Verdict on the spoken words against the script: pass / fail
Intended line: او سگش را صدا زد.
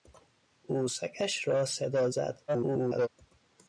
fail